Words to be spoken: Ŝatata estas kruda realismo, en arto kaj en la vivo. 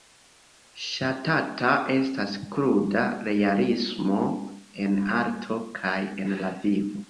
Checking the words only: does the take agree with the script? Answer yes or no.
yes